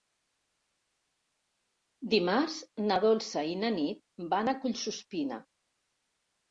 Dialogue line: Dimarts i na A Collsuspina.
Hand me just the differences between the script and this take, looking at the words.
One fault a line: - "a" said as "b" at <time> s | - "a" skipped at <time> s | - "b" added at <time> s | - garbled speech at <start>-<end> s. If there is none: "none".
- "na Dolça" added at 2.9 s
- "Nit van" added at 3.8 s